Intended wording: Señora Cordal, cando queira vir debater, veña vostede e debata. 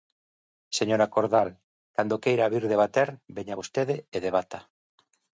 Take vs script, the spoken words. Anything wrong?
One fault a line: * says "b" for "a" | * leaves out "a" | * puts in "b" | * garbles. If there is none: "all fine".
all fine